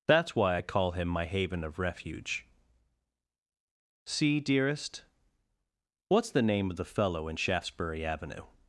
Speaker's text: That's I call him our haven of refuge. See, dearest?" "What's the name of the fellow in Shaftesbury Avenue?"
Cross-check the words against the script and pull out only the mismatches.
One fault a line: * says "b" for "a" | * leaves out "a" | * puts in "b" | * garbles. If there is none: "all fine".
* puts in "why"
* says "my" for "our"